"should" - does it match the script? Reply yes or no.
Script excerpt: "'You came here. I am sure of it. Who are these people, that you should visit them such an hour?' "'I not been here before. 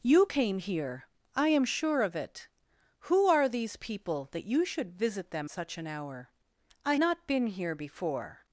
yes